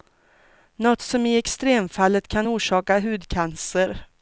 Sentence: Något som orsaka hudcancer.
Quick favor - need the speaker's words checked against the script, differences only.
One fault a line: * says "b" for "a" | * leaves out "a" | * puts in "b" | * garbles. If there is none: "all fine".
* puts in "i extremfallet kan"